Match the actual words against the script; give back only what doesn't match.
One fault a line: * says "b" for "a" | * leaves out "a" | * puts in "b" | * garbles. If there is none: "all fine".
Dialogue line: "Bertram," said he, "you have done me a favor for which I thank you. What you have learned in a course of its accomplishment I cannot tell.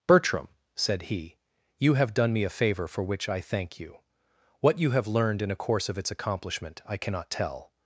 all fine